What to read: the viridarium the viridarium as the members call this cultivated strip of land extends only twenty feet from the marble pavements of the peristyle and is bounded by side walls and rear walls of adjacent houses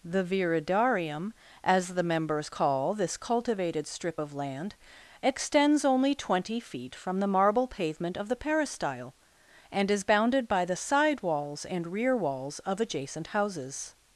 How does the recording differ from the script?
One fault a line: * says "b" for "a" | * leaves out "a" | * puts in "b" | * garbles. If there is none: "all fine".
* leaves out "the viridarium"
* says "pavement" for "pavements"
* puts in "the"